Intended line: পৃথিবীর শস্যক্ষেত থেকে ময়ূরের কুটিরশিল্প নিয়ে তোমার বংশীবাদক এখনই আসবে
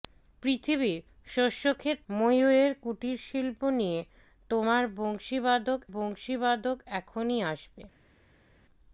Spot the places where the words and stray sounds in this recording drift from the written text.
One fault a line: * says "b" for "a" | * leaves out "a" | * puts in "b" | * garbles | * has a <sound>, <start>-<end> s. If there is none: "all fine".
* leaves out "থেকে"
* puts in "বংশীবাদক"